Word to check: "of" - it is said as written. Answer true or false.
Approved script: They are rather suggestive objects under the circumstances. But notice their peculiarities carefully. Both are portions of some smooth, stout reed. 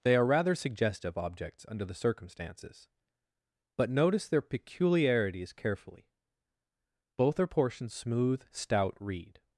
false